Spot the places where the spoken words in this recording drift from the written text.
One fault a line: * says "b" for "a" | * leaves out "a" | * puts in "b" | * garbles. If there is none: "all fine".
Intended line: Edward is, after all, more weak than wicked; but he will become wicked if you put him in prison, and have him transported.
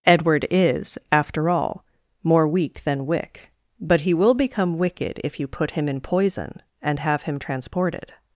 * says "wick" for "wicked"
* says "poison" for "prison"